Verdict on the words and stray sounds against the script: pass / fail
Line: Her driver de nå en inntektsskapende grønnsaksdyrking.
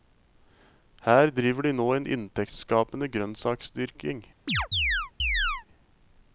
fail